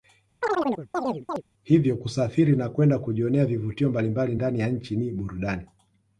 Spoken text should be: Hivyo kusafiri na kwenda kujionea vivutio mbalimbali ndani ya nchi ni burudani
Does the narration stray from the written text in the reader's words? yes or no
no